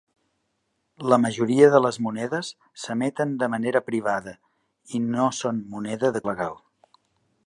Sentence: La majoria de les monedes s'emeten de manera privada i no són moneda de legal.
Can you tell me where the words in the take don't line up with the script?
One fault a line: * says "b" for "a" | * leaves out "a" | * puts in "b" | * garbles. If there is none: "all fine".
all fine